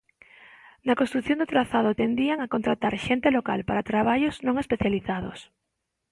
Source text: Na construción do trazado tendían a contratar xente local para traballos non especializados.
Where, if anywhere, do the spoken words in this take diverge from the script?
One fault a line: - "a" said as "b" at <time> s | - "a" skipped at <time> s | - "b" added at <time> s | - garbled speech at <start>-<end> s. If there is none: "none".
none